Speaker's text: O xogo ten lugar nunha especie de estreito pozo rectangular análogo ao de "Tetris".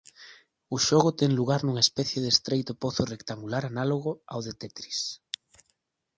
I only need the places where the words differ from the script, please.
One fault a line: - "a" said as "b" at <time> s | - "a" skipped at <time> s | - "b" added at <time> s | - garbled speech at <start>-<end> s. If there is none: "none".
none